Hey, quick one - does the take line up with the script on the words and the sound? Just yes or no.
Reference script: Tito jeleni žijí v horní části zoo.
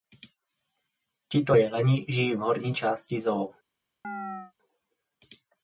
no